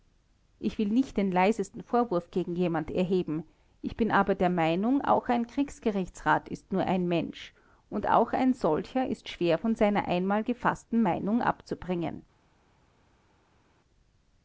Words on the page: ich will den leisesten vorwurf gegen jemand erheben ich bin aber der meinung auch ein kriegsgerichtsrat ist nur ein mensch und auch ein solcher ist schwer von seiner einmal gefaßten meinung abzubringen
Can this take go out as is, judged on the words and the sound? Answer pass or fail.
fail